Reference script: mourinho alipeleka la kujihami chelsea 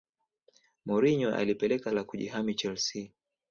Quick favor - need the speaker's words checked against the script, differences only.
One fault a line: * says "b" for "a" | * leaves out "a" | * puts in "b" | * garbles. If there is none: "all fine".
all fine